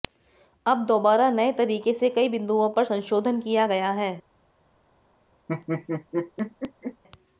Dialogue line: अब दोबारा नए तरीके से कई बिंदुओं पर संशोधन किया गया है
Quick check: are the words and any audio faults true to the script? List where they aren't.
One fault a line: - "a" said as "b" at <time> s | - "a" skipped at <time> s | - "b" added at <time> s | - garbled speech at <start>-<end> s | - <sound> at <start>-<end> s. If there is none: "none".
- laugh at 5.5-7.0 s